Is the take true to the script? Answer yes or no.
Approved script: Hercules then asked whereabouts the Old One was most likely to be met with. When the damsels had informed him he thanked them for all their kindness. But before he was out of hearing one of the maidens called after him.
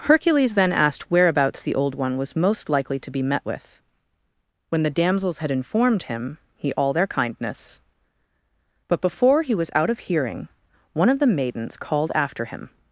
no